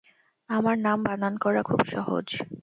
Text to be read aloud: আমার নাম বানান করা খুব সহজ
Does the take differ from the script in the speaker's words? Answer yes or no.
no